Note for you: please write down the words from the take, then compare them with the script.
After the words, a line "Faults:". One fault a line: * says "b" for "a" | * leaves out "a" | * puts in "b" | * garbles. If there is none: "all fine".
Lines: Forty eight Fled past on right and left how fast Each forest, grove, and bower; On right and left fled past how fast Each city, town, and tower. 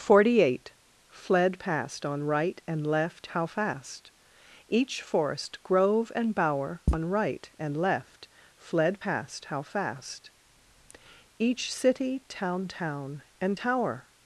Forty eight Fled past on right and left how fast Each forest, grove, and bower; On right and left fled past how fast Each city, town town, and tower.
Faults:
* puts in "town"